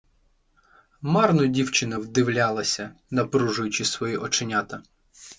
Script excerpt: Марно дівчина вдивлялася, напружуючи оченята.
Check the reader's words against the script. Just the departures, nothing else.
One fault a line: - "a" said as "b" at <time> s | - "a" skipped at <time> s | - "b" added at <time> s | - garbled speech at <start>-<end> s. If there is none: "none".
- "свої" added at 3.8 s